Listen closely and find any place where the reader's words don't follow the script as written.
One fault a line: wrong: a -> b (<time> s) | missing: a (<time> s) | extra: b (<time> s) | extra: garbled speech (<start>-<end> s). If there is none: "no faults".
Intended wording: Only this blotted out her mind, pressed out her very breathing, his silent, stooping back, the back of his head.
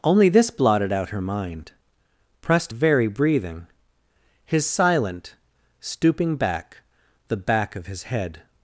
missing: out her (2.7 s)